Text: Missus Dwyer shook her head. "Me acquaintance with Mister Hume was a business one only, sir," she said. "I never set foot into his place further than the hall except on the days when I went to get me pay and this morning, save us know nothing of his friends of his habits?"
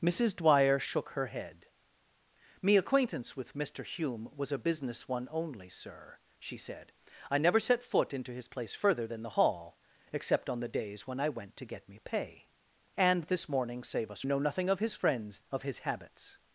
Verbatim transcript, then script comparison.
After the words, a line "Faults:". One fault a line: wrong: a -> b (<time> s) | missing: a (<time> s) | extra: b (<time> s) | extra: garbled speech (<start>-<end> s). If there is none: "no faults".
Missus Dwyer shook her head. "Me acquaintance with Mister Hume was a business one only, sir," she said. "I never set foot into his place further than the hall except on the days when I went to get me pay and this morning, save us know nothing of his friends of his habits?"
Faults:
no faults